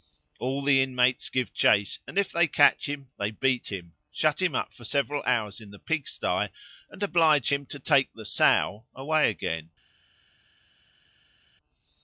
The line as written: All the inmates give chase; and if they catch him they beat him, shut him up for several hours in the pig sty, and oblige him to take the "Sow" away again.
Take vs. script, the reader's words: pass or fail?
pass